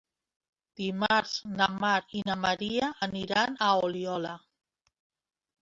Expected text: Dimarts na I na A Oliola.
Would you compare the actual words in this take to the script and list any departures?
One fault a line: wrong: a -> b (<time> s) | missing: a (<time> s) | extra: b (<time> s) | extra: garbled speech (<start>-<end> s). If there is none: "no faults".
extra: Mar (1.8 s)
extra: Maria aniran (2.4 s)